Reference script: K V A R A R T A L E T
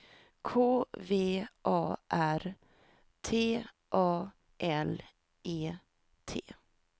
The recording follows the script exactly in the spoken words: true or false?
false